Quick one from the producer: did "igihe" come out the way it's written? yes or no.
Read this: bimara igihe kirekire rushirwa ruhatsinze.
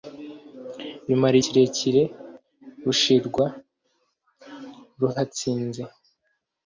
no